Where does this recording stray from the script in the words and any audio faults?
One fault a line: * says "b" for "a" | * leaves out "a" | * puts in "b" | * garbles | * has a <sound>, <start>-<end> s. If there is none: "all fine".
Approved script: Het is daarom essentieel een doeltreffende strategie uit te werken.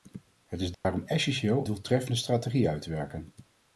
* has a dropout, 0.7-0.8 s
* leaves out "een"